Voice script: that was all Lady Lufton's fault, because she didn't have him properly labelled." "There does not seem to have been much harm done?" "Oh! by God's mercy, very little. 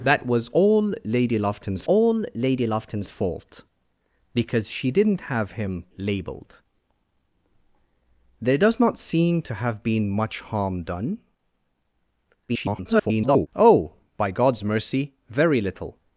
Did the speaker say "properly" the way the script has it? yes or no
no